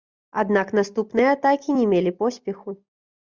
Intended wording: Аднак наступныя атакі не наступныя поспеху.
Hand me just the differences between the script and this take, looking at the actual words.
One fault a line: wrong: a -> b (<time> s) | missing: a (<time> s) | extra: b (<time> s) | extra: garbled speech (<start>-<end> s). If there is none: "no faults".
wrong: наступныя -> мелі (1.9 s)